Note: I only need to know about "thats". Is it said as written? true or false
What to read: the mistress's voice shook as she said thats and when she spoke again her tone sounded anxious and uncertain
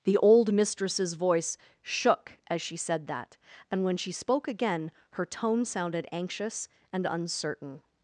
false